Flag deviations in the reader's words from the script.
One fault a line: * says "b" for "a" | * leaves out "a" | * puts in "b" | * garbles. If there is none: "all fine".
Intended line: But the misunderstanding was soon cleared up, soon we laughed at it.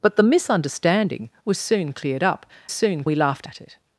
all fine